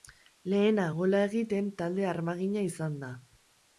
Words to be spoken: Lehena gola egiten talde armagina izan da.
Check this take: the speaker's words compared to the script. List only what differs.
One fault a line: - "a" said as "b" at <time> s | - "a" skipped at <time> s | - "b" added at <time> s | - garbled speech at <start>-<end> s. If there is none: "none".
none